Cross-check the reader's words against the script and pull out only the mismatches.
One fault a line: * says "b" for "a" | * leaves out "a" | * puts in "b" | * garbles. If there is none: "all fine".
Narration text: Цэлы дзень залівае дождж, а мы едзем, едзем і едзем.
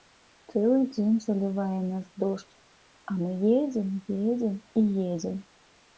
* puts in "нас"